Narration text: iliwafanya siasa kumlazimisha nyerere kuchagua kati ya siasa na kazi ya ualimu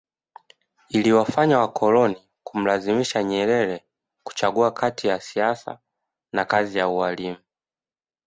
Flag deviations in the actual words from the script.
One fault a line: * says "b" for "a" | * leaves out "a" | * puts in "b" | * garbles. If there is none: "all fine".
* says "wakoloni" for "siasa"